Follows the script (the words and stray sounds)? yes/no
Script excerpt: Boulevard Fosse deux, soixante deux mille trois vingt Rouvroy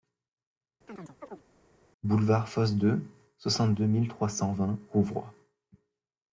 no